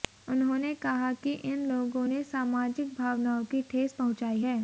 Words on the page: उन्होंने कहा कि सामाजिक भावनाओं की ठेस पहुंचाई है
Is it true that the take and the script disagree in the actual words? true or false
true